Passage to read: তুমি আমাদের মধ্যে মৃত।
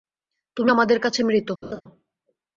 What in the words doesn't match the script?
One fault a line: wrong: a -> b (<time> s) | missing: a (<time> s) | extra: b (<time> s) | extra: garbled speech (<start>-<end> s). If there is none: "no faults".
wrong: মধ্যে -> কাছে (1.0 s)